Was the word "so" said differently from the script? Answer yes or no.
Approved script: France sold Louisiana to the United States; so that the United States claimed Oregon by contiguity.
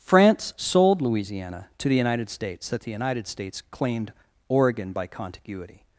yes